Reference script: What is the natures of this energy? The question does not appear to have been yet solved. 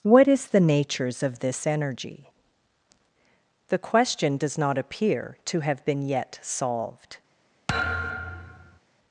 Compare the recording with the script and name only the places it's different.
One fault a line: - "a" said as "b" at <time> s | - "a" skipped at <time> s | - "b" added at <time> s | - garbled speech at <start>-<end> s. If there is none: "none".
none